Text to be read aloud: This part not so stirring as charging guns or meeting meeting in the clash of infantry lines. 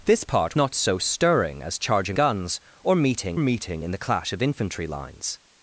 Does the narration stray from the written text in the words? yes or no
no